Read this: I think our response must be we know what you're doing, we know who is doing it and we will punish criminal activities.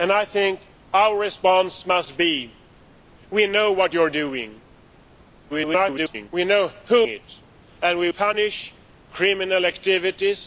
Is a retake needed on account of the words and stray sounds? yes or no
yes